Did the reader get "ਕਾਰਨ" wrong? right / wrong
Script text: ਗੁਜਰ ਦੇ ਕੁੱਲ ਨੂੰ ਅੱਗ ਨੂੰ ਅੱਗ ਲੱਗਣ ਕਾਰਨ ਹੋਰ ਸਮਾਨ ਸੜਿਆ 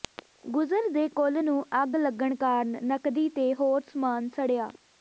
wrong